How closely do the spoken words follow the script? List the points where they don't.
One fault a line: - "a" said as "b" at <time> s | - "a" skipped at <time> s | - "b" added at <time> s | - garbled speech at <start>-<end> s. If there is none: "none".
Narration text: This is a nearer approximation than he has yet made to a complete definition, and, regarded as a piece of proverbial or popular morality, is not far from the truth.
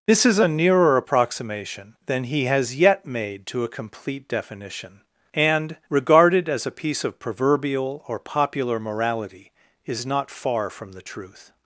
none